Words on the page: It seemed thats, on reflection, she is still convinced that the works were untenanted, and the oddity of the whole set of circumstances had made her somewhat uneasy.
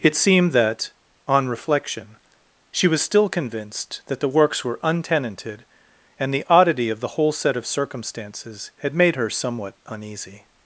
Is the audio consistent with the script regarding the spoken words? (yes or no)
no